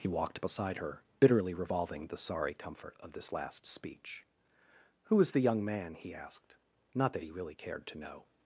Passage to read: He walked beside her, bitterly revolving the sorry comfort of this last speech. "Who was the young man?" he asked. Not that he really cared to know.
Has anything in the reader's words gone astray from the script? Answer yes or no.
no